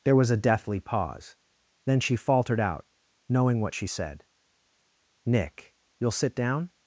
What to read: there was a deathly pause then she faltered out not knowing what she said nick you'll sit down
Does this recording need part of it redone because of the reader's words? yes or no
yes